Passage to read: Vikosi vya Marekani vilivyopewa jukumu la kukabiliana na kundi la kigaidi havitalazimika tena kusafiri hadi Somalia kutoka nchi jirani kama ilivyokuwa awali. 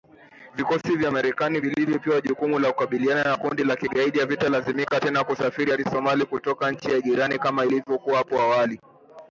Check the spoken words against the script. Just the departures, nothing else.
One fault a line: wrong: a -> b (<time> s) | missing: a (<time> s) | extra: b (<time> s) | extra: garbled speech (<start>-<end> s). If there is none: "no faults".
extra: hapo (8.2 s)